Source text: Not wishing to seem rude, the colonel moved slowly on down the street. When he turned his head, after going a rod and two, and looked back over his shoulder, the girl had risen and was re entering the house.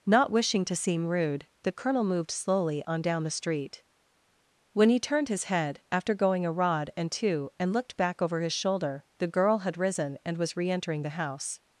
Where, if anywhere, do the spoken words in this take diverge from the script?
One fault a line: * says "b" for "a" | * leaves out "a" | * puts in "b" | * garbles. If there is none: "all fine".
all fine